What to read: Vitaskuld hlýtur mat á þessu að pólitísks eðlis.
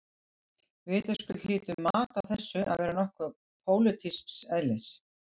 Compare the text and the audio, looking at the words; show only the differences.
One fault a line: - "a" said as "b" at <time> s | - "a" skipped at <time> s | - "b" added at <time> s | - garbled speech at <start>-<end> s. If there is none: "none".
- "vera nokkuð" added at 2.8 s